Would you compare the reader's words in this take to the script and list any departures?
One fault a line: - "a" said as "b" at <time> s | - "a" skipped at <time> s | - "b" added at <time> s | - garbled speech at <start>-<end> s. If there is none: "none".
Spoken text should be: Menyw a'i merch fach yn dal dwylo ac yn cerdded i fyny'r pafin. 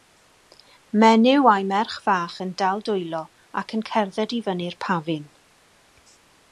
none